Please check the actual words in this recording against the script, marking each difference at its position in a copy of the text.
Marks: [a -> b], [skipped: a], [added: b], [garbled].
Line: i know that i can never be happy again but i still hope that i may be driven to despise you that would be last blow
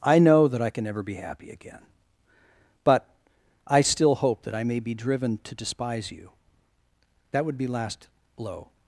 i know that i can never be happy again but i still hope that i may be driven to despise you that would be last blow